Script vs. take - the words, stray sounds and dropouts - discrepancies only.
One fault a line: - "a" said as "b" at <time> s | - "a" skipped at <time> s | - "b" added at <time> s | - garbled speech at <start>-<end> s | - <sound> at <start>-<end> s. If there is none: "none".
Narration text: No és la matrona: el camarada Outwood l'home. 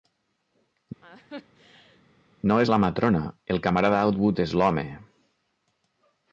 - laugh at 1.0-2.0 s
- "és" added at 4.5 s